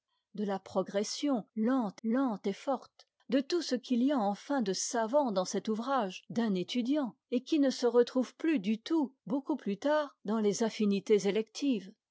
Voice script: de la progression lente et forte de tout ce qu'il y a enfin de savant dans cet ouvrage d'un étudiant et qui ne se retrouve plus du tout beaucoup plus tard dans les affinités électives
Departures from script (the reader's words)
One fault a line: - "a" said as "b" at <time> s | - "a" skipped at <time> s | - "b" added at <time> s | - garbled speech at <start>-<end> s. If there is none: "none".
- "lente" added at 2.0 s